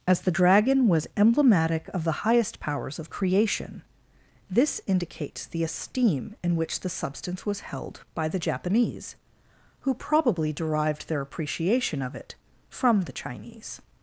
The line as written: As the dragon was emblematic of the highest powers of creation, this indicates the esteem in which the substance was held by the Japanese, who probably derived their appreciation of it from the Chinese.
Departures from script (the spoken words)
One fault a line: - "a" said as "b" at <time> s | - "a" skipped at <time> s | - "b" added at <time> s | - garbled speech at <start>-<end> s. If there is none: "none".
none